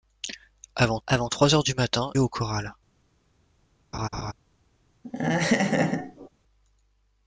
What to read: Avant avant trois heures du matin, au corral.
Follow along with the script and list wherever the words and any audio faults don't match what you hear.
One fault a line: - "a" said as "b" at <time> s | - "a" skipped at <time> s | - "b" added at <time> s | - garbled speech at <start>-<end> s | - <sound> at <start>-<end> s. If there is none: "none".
- laugh at 3.9-4.3 s
- laugh at 5.0-6.3 s